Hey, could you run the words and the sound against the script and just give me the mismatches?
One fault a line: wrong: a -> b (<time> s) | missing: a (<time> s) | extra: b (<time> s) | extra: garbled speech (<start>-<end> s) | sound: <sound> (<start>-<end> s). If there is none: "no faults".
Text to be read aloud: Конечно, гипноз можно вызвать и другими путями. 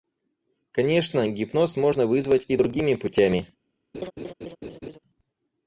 sound: laugh (3.9-5.0 s)